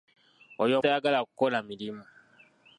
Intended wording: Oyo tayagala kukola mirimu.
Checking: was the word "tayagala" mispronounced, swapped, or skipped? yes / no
no